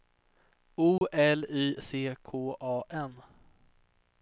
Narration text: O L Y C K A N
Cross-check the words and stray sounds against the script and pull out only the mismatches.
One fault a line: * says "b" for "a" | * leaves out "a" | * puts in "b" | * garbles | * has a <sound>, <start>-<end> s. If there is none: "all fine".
* has a dropout, 1.0-1.0 s